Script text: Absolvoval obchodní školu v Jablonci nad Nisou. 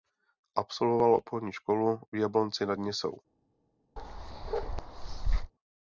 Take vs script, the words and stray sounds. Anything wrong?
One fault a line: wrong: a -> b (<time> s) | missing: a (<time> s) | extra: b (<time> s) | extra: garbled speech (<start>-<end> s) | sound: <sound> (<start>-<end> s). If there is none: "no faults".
sound: bark (4.0-5.5 s)